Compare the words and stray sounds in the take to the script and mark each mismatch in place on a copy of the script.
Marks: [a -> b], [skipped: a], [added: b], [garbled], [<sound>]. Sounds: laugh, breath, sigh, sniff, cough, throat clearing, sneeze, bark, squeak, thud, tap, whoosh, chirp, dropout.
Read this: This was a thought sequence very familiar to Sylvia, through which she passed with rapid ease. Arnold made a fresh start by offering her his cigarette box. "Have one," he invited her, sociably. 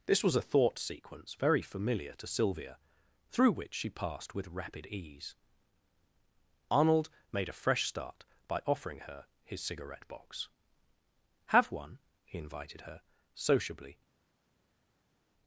This was a thought sequence very familiar to Sylvia, through which she passed with rapid ease. Arnold made a fresh start by offering her his cigarette box. "Have one," he invited her, sociably.